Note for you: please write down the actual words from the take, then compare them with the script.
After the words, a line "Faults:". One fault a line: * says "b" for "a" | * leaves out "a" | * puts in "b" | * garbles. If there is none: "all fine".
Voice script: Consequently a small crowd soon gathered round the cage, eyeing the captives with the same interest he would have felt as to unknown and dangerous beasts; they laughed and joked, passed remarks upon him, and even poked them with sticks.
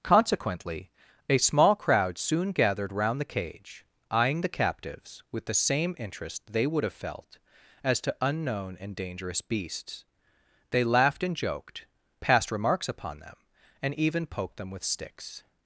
Consequently a small crowd soon gathered round the cage, eyeing the captives with the same interest they would have felt as to unknown and dangerous beasts; they laughed and joked, passed remarks upon them, and even poked them with sticks.
Faults:
* says "they" for "he"
* says "them" for "him"